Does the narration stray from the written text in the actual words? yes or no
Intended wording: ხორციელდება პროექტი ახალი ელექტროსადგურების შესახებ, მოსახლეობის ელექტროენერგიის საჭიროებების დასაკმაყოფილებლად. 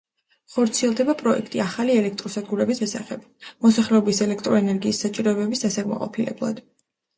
no